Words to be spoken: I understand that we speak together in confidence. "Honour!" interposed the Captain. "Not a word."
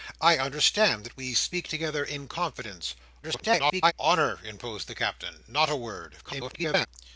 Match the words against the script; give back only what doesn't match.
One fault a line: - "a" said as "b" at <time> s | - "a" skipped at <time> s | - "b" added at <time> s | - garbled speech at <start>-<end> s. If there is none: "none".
- garbled speech at 3.2-3.9 s
- garbled speech at 6.2-6.9 s